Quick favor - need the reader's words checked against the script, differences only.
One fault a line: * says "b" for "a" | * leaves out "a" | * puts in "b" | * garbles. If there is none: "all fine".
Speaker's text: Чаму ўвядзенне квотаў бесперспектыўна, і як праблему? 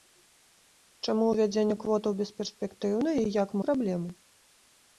all fine